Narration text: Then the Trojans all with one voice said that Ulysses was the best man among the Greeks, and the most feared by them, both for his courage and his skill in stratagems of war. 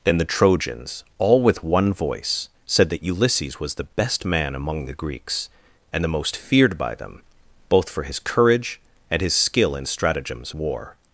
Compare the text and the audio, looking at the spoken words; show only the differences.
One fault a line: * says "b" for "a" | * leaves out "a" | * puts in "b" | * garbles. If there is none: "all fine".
* leaves out "of"